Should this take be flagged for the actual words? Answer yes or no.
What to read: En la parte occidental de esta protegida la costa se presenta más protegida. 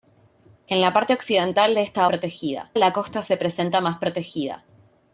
no